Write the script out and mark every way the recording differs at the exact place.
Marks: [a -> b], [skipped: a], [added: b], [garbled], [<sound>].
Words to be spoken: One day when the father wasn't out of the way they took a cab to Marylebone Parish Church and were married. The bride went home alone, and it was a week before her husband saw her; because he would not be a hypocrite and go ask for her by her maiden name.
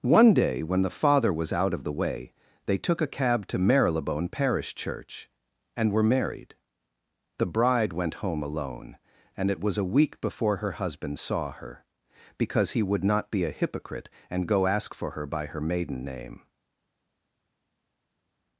One day when the father [wasn't -> was] out of the way they took a cab to Marylebone Parish Church and were married. The bride went home alone, and it was a week before her husband saw her; because he would not be a hypocrite and go ask for her by her maiden name.